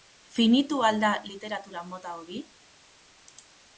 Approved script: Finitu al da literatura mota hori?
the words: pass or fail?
pass